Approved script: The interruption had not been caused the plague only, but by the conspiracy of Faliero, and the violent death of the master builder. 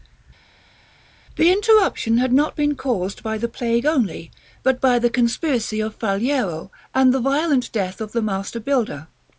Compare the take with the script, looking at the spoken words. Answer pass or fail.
fail